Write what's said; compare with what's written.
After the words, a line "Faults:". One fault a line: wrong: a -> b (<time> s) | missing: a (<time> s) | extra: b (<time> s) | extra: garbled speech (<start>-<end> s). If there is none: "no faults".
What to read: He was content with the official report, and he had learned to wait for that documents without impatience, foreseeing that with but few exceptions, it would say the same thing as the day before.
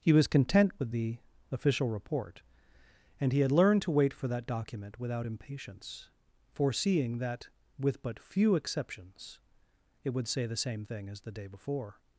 He was content with the official report, and he had learned to wait for that document without impatience, foreseeing that with but few exceptions, it would say the same thing as the day before.
Faults:
wrong: documents -> document (4.5 s)